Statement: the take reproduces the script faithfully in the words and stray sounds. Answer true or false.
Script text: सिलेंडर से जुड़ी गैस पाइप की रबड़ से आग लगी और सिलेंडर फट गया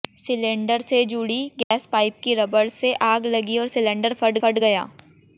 false